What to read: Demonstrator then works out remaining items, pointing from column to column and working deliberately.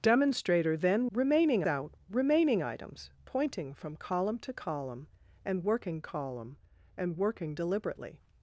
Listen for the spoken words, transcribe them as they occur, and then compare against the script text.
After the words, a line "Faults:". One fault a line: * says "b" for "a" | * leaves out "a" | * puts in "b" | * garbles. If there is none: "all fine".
Demonstrator then remaining out remaining items, pointing from column to column and working column and working deliberately.
Faults:
* says "remaining" for "works"
* puts in "column and working"